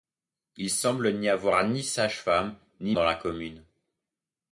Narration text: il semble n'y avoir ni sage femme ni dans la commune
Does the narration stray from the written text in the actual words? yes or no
no